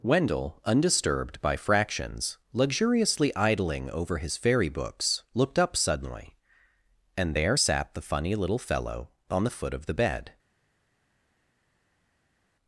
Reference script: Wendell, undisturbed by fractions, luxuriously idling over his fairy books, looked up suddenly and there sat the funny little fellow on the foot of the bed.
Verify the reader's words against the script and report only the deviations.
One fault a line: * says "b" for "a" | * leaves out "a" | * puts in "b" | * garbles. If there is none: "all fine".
all fine